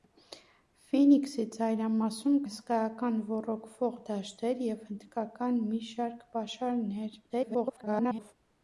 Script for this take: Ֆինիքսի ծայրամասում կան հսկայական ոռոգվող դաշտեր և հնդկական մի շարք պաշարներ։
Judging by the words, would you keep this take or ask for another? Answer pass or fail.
fail